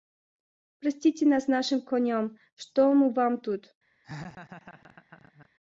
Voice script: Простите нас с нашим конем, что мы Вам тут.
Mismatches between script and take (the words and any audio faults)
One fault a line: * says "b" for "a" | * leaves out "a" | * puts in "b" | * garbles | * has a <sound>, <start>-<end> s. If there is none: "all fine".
* has a laugh, 4.0-5.5 s